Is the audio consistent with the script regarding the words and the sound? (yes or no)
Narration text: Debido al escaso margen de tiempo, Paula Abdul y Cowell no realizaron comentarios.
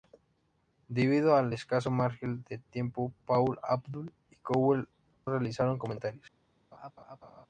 no